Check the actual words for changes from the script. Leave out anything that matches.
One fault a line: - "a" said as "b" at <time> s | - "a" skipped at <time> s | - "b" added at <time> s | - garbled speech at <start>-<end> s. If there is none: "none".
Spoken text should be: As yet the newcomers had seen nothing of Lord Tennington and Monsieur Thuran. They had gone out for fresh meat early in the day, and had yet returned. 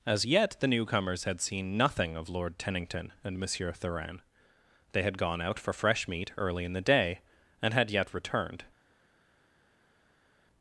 none